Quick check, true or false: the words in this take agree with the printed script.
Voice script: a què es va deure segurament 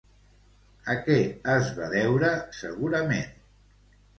true